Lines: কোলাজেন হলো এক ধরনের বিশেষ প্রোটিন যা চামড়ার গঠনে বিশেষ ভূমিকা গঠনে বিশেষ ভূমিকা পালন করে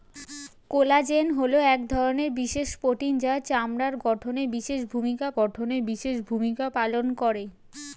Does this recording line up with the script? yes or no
yes